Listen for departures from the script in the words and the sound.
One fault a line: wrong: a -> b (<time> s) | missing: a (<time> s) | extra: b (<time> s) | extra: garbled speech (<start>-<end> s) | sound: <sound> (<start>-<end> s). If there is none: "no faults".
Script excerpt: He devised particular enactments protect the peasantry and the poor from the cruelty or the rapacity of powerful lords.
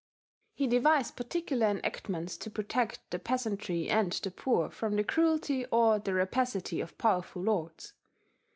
extra: to (2.4 s)